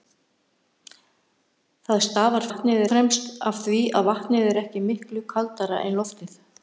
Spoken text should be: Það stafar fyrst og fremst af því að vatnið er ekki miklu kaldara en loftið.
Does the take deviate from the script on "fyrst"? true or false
true